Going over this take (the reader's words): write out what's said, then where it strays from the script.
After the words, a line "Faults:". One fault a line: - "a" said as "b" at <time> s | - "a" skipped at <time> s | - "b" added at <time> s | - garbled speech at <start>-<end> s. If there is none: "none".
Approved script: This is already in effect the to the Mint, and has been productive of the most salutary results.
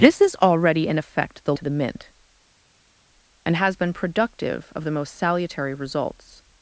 This is already in effect the to the Mint, and has been productive of the most salutary results.
Faults:
none